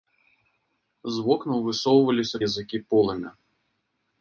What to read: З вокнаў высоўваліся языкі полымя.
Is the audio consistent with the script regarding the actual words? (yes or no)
yes